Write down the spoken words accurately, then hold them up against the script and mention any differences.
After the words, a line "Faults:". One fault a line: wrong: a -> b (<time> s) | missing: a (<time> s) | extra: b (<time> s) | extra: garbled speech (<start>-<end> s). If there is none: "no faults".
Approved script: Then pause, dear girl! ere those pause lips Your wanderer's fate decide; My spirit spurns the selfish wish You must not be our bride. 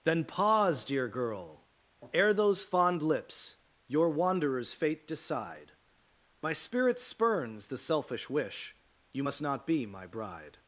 Then pause, dear girl! ere those fond lips Your wanderer's fate decide; My spirit spurns the selfish wish You must not be my bride.
Faults:
wrong: pause -> fond (2.6 s)
wrong: our -> my (9.8 s)